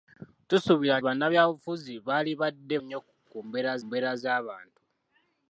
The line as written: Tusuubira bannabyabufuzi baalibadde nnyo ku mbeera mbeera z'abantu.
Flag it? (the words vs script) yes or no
no